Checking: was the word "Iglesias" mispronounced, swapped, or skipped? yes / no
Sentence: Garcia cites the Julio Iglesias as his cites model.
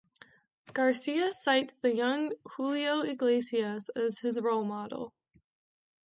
no